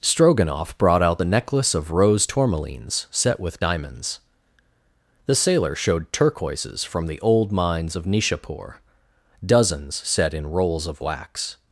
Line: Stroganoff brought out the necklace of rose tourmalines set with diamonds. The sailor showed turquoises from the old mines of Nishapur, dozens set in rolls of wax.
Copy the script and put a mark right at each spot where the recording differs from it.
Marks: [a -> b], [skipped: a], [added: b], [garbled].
Stroganoff brought out the necklace of rose tourmalines set with diamonds. The sailor showed turquoises from the old mines of Nishapur, dozens set in rolls of wax.